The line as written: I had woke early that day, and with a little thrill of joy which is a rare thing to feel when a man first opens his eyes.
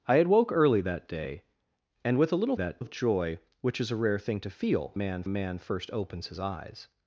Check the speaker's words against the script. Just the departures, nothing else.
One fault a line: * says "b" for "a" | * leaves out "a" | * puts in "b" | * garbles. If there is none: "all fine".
* says "that" for "thrill"
* says "man" for "when"